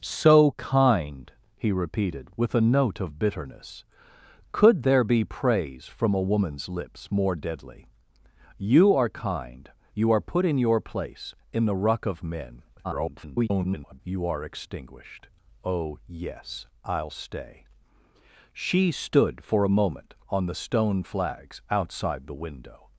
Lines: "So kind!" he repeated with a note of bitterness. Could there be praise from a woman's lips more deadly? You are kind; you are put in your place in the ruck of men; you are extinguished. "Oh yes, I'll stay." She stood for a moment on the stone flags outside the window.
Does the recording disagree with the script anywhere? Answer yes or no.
yes